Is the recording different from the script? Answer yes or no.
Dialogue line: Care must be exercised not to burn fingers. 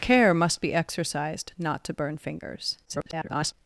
yes